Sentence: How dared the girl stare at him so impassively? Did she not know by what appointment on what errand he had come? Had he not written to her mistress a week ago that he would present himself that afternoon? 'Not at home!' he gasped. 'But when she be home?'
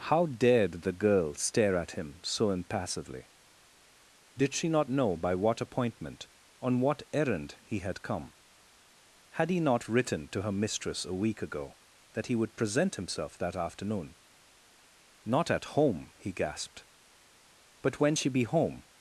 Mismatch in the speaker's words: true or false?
false